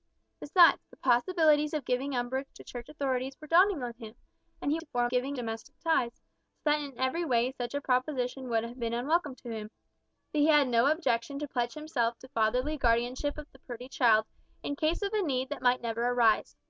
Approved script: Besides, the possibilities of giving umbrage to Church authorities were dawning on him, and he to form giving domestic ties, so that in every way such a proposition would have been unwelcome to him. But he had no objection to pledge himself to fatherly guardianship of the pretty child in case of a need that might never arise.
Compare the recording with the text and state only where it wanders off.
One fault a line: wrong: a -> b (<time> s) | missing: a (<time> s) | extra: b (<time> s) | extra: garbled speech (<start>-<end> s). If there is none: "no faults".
no faults